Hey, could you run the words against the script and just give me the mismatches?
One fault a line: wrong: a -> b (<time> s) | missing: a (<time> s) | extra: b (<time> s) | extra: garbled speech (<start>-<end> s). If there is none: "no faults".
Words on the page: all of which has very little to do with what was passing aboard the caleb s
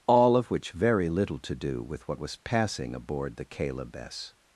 missing: has (0.7 s)